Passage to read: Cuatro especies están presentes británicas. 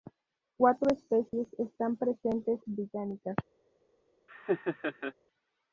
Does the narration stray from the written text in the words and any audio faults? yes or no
yes